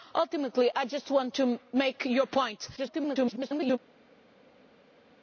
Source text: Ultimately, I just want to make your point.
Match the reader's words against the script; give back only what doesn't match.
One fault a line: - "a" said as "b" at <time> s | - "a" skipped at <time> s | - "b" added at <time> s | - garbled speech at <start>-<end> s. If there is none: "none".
- garbled speech at 2.8-3.8 s